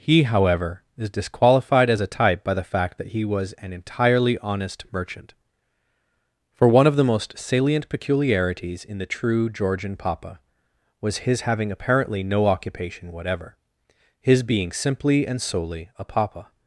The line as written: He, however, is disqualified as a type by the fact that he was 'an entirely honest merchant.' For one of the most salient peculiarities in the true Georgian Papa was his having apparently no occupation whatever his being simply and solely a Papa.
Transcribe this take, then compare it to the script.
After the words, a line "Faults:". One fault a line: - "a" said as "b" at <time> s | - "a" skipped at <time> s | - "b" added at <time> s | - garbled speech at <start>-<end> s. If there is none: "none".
He, however, is disqualified as a type by the fact that he was 'an entirely honest merchant.' For one of the most salient peculiarities in the true Georgian Papa was his having apparently no occupation whatever his being simply and solely a Papa.
Faults:
none